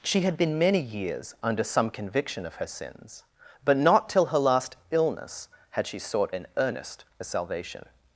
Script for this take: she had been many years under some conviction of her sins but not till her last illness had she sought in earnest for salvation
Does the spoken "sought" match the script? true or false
true